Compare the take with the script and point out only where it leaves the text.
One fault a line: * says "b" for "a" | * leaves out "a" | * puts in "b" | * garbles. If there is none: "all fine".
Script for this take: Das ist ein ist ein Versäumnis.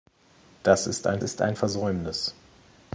all fine